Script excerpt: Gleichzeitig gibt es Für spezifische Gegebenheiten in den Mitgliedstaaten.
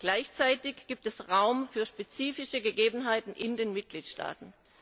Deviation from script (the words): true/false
true